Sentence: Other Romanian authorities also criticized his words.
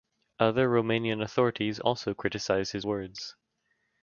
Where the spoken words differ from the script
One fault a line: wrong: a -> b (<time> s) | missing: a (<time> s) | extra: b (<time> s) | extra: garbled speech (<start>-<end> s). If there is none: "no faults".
no faults